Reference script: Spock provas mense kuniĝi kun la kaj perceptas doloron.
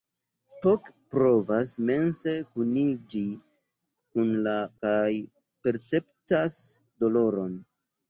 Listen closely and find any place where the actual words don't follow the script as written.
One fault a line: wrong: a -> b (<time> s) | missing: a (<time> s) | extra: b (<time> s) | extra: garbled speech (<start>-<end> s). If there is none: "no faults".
no faults